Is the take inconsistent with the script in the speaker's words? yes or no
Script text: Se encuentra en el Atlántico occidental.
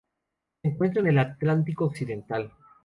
no